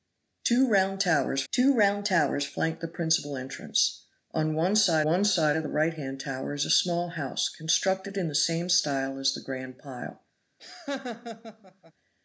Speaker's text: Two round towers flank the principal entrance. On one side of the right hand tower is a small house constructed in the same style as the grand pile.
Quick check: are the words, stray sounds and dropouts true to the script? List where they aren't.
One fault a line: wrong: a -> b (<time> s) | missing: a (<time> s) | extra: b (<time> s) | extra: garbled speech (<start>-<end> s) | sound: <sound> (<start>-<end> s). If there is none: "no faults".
extra: two round towers (1.5 s)
extra: one side (5.0 s)
sound: laugh (10.6-11.9 s)